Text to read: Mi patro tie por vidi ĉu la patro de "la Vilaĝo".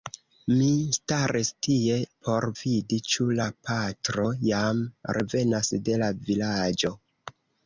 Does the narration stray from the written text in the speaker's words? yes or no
yes